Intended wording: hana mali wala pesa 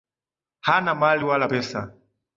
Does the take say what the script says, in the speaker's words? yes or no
yes